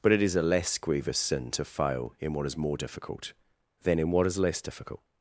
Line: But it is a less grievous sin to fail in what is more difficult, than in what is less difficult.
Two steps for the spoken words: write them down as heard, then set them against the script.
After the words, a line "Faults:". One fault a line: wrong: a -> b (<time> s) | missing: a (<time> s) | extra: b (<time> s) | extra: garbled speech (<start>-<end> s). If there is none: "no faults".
But it is a less grievous sin to fail in what is more difficult, than in what is less difficult.
Faults:
no faults